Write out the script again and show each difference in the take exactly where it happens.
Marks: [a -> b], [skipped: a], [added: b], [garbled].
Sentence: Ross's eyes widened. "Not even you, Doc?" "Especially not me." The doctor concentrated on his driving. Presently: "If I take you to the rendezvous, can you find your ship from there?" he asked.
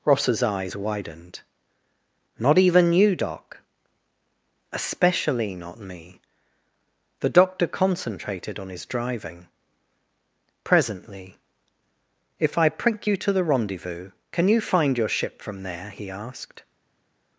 Ross's eyes widened. "Not even you, Doc?" "Especially not me." The doctor concentrated on his driving. Presently: "If I [take -> prink] you to the rendezvous, can you find your ship from there?" he asked.